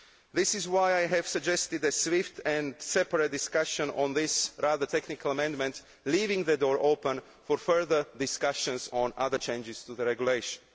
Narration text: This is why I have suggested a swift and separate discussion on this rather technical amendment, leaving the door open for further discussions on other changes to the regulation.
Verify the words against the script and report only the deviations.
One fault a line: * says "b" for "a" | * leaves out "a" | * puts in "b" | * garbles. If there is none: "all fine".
all fine